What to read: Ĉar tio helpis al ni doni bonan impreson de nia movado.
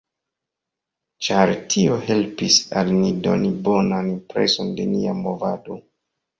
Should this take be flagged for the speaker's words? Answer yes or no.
no